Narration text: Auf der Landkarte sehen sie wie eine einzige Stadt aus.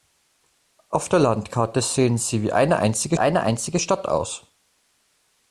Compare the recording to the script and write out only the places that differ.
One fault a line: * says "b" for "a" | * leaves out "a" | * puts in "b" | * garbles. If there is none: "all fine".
* puts in "eine einzige"